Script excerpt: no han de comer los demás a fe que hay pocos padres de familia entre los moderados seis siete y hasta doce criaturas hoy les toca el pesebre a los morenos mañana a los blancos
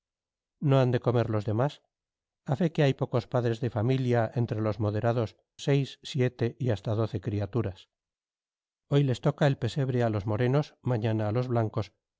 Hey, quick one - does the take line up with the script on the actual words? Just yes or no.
yes